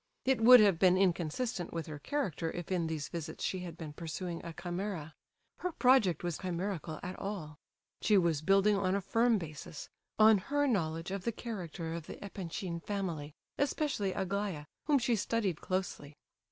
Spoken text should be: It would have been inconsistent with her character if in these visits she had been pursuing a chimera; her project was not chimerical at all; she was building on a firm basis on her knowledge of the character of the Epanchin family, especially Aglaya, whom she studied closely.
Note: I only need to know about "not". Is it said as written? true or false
false